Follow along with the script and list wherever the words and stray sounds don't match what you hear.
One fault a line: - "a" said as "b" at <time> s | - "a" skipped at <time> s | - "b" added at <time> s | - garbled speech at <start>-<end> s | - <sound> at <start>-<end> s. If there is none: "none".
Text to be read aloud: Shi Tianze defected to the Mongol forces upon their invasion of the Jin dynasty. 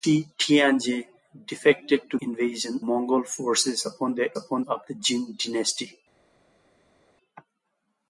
- "the" said as "invasion" at 2.2 s
- "invasion" said as "upon" at 4.4 s